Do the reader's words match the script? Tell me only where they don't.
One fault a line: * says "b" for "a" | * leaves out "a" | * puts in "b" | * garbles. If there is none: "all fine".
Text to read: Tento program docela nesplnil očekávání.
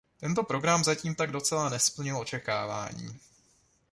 * puts in "zatím tak"